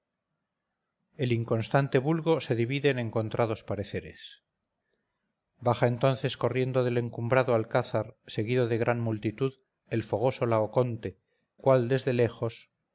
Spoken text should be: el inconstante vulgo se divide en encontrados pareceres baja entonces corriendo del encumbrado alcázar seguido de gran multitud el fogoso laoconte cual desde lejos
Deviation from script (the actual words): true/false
false